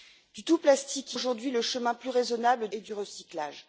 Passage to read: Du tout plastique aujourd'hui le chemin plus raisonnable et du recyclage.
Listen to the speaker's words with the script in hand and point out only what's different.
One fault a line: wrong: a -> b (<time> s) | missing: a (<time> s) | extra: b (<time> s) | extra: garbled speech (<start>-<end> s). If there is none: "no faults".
no faults